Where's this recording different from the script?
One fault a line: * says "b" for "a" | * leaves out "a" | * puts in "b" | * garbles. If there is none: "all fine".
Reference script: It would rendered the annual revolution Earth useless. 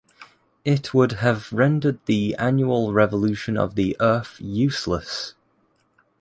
* puts in "have"
* puts in "of the"